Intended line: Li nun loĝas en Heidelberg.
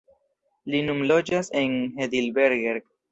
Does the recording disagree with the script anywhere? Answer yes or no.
no